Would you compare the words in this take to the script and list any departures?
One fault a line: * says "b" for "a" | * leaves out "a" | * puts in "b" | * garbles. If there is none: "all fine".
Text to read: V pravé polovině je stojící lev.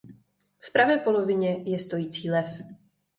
all fine